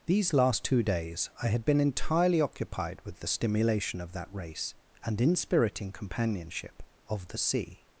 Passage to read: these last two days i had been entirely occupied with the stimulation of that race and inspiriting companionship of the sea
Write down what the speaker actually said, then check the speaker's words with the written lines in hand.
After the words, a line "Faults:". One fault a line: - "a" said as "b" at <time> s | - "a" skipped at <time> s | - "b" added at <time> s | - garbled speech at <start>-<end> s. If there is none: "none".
these last two days i had been entirely occupied with the stimulation of that race and inspiriting companionship of the sea
Faults:
none